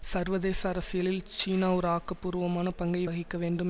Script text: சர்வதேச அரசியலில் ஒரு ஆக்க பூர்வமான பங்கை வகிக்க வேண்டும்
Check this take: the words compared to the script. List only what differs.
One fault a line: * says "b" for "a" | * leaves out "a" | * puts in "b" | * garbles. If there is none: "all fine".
* puts in "சீனா"